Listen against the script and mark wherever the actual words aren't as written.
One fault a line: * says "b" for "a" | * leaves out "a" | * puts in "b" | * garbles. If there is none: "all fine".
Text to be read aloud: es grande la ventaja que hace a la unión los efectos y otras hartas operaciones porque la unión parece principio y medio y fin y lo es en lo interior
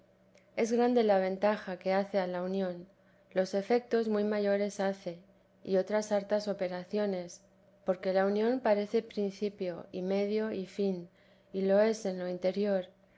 * puts in "muy mayores hace"